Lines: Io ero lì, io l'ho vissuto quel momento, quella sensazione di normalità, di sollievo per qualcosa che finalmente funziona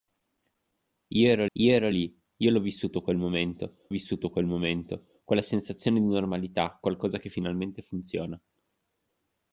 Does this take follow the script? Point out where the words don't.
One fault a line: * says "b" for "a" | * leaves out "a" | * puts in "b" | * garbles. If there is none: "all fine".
* puts in "io ero"
* puts in "vissuto quel momento"
* leaves out "di sollievo per"